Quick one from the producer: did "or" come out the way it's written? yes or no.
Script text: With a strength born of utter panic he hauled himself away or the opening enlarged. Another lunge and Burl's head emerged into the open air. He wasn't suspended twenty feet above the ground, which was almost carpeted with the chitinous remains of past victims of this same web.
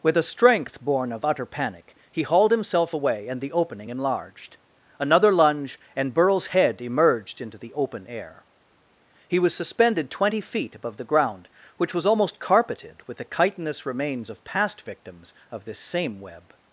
no